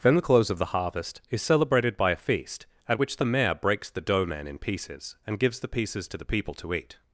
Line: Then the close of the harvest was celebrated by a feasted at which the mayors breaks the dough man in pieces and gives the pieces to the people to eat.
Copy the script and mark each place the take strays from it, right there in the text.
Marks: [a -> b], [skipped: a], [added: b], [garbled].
Then the close of the harvest [was -> is] celebrated by a [feasted -> feast] at which the [mayors -> mayor] breaks the dough man in pieces and gives the pieces to the people to eat.